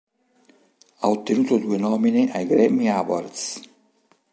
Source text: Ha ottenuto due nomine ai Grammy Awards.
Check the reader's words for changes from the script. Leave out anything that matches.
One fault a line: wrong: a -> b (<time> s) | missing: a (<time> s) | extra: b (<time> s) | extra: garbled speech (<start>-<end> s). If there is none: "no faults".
no faults